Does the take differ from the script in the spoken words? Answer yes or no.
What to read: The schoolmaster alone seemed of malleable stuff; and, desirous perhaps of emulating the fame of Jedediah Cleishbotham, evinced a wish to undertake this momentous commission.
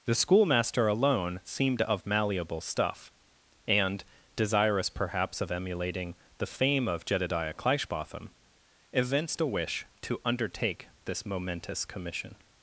no